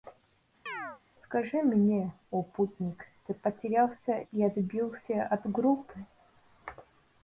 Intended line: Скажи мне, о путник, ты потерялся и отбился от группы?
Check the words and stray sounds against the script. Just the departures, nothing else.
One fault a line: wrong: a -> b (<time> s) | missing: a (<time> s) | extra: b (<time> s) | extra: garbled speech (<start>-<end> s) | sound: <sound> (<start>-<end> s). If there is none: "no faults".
sound: chirp (0.7-1.0 s)